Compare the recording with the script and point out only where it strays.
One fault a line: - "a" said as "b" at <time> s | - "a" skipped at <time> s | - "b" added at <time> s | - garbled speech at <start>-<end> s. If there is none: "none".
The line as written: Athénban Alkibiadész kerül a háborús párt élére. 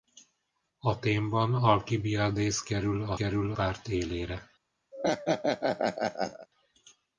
- "háborús" said as "kerül" at 3.1 s